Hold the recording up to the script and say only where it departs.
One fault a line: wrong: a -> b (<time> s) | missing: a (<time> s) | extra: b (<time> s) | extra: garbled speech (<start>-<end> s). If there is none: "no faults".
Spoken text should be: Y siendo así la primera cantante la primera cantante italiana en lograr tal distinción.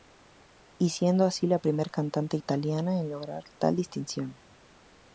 missing: la primera cantante (2.4 s)